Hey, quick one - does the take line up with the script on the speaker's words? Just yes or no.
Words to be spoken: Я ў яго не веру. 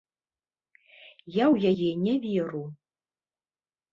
no